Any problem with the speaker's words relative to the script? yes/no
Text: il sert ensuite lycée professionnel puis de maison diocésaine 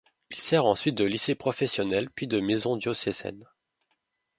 yes